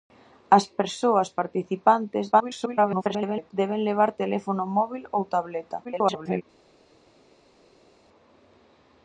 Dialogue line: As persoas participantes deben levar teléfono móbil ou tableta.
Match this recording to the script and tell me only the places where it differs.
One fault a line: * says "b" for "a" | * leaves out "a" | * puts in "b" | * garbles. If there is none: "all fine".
* garbles
* garbles